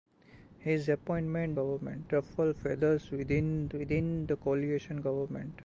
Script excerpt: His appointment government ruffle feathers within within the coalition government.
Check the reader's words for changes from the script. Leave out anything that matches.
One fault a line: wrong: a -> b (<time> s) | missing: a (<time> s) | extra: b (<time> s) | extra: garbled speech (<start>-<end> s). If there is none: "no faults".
no faults